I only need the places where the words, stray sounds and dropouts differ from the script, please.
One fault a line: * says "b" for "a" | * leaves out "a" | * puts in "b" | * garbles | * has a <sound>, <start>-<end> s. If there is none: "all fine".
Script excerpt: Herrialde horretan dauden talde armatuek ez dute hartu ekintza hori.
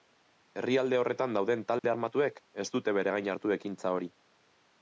* has a dropout, 1.8-1.8 s
* puts in "bere gain"